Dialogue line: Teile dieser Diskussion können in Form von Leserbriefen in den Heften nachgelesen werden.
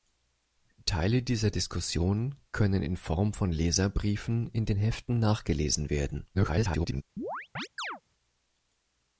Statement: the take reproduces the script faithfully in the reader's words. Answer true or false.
false